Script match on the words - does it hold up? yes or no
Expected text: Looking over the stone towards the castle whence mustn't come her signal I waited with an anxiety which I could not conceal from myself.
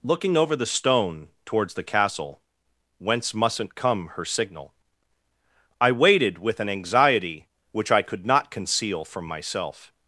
yes